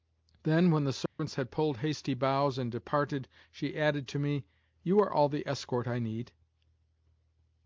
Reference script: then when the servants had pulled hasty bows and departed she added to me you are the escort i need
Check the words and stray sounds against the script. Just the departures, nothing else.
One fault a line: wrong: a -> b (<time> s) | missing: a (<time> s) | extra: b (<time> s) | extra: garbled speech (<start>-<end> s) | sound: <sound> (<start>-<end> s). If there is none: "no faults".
sound: dropout (1.1-1.2 s)
extra: all (5.1 s)